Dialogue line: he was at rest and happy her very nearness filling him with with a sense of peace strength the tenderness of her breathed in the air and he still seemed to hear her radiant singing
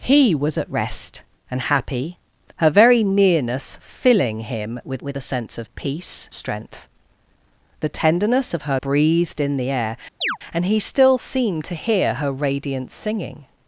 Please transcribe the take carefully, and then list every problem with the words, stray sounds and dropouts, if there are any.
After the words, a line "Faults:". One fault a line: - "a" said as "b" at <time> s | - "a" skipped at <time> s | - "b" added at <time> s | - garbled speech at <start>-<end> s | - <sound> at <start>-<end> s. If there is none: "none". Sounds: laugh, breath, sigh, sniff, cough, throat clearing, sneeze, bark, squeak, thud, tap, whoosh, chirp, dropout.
he was at rest and happy her very nearness filling him with with a sense of peace strength the tenderness of her breathed in the air and he still seemed to hear her radiant singing
Faults:
- chirp at 10.2-10.4 s